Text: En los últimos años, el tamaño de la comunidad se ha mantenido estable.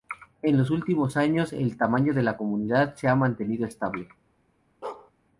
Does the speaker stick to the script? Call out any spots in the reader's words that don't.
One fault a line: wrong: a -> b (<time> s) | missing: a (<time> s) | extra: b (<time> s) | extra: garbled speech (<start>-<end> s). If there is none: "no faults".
no faults